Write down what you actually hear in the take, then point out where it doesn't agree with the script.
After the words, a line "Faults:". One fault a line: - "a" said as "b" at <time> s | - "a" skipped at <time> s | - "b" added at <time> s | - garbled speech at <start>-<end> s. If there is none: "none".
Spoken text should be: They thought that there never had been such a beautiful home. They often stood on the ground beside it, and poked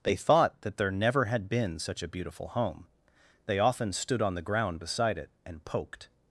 They thought that there never had been such a beautiful home. They often stood on the ground beside it, and poked
Faults:
none